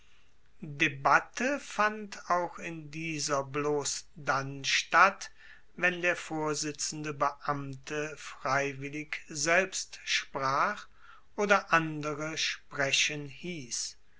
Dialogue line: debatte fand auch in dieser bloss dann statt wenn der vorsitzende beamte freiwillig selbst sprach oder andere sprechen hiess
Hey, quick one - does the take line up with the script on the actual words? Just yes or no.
yes